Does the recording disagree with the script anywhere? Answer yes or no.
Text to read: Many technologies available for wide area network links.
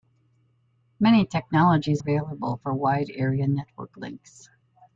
no